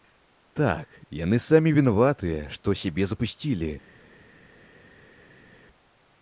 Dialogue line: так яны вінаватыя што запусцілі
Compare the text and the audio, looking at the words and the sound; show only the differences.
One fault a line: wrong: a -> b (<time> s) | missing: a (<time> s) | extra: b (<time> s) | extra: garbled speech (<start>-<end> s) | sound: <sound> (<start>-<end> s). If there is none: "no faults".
extra: самі (1.5 s)
extra: сябе (2.8 s)